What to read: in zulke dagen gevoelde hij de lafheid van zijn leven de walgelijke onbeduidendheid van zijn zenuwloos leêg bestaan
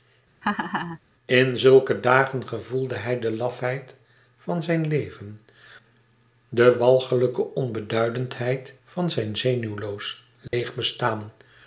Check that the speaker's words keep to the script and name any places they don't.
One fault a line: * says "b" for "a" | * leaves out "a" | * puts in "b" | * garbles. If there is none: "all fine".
all fine